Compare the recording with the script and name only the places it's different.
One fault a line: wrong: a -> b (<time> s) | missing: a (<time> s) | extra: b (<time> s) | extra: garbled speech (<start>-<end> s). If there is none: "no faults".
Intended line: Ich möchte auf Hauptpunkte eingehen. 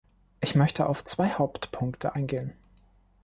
extra: zwei (1.0 s)